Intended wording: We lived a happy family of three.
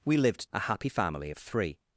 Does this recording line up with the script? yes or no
yes